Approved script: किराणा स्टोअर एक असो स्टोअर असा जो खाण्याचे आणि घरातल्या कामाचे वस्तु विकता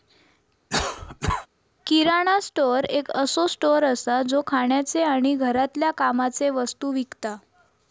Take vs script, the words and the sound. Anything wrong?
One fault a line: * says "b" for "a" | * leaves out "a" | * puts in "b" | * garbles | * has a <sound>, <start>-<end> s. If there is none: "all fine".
* has a cough, 0.7-1.5 s